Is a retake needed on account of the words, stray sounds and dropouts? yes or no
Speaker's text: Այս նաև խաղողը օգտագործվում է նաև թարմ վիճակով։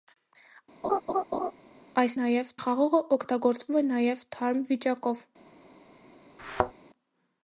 yes